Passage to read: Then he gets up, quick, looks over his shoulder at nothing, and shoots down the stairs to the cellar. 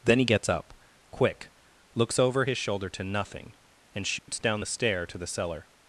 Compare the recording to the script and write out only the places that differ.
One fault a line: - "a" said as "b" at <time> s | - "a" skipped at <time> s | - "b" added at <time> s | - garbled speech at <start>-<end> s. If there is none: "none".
- "at" said as "to" at 2.9 s
- "stairs" said as "stair" at 4.6 s